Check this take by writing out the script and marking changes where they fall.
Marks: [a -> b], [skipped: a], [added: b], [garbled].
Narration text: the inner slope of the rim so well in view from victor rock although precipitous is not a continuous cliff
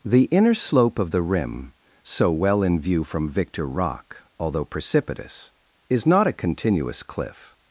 the inner slope of the rim so well in view from victor rock although precipitous is not a continuous cliff